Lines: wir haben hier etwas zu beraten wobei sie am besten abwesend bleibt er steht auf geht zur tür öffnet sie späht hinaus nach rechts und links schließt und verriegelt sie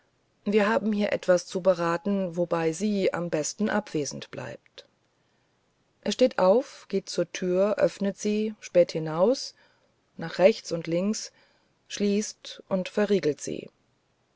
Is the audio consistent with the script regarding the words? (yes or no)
yes